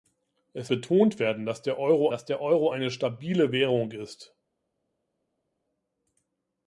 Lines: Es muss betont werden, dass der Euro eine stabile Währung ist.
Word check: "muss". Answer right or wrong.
wrong